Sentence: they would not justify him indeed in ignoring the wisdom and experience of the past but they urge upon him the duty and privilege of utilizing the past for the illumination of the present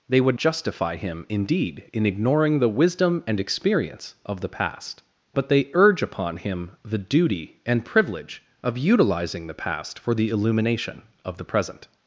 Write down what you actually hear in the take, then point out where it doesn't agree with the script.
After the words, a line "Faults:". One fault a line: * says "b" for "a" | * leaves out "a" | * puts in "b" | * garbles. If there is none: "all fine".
they would justify him indeed in ignoring the wisdom and experience of the past but they urge upon him the duty and privilege of utilizing the past for the illumination of the present
Faults:
* leaves out "not"